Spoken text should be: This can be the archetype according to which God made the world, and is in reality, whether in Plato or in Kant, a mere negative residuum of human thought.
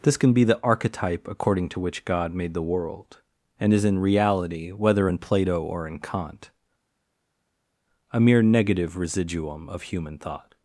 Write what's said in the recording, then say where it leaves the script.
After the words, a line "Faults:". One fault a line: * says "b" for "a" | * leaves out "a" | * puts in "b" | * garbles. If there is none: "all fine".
This can be the archetype according to which God made the world, and is in reality, whether in Plato or in Kant, a mere negative residuum of human thought.
Faults:
all fine